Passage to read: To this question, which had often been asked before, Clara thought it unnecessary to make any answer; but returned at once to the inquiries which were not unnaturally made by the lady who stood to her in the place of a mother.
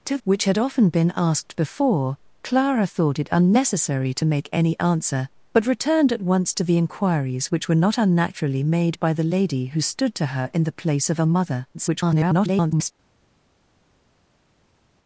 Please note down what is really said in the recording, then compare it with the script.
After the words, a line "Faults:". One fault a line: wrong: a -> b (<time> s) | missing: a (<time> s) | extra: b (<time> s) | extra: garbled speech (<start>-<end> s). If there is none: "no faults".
To which had often been asked before, Clara thought it unnecessary to make any answer; but returned at once to the inquiries which were not unnaturally made by the lady who stood to her in the place of a mother. [garbled]
Faults:
missing: this question (0.2 s)
extra: garbled speech (11.7-12.9 s)